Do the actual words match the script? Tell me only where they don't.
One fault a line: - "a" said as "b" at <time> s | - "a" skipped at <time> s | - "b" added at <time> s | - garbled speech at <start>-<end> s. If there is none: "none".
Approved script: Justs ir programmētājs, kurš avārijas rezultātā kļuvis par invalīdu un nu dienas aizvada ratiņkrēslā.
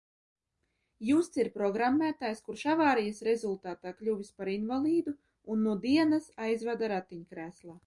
none